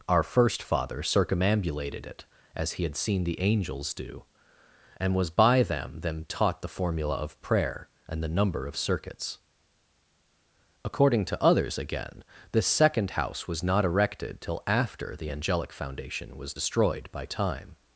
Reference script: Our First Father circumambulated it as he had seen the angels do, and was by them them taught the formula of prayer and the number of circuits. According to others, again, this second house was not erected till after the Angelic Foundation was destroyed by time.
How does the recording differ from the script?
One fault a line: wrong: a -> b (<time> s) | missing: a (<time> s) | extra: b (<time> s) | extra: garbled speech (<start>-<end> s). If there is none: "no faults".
no faults